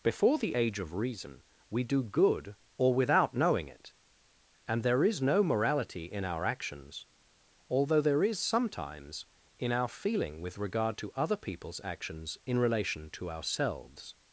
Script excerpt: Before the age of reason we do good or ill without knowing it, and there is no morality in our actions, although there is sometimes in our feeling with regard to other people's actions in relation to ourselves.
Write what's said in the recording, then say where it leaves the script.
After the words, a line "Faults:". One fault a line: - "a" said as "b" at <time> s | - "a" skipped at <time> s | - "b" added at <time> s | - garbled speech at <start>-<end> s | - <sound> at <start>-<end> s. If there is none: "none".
Before the age of reason we do good or without knowing it, and there is no morality in our actions, although there is sometimes in our feeling with regard to other people's actions in relation to ourselves.
Faults:
- "ill" skipped at 2.9 s